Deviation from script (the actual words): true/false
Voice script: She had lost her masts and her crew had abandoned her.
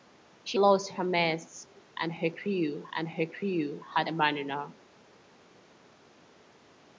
true